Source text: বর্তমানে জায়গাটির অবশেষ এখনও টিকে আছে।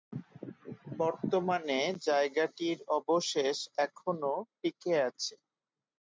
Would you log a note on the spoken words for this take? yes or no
no